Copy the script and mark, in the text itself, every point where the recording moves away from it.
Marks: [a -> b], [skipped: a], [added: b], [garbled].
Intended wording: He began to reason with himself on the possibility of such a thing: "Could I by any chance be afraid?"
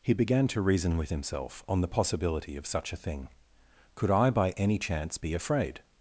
He began to reason with himself on the possibility of such a thing: "Could I by any chance be afraid?"